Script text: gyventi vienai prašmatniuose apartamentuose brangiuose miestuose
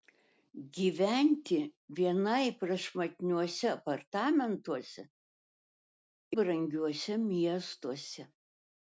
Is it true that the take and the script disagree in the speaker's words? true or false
false